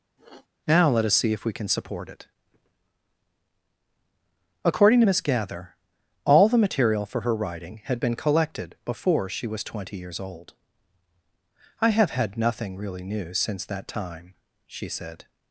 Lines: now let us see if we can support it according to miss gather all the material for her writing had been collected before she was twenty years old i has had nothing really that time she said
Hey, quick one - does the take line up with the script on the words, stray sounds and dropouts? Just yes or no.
no